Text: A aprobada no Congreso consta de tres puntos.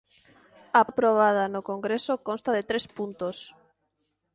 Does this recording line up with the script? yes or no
yes